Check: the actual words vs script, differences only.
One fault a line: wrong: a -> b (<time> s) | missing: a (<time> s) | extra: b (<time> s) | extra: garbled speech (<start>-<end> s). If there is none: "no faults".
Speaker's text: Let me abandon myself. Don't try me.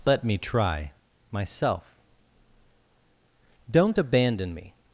wrong: abandon -> try (0.4 s)
wrong: try -> abandon (4.0 s)